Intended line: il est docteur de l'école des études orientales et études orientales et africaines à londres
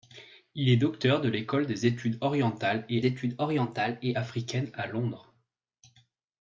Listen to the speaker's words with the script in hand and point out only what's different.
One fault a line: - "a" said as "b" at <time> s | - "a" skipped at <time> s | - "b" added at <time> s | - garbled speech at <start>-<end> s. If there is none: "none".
none